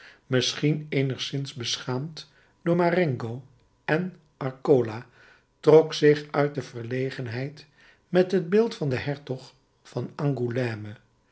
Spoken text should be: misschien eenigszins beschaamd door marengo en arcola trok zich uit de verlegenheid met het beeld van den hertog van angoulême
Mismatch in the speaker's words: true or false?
false